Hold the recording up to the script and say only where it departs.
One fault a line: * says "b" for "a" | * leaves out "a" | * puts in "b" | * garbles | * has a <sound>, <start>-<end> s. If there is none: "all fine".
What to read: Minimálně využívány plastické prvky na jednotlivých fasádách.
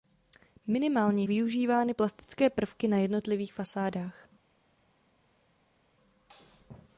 all fine